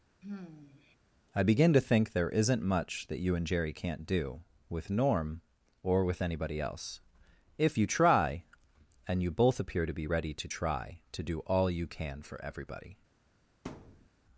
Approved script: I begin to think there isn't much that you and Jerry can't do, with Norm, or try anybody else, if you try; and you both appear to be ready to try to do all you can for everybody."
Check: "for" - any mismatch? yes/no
no